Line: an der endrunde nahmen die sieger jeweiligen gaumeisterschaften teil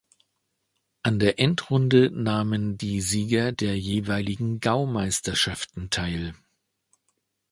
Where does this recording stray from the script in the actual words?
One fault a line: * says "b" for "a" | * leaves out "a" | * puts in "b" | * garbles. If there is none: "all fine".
* puts in "der"